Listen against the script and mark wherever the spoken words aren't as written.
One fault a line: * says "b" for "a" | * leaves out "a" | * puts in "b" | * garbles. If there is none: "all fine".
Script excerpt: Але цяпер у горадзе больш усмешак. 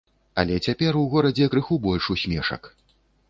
* puts in "крыху"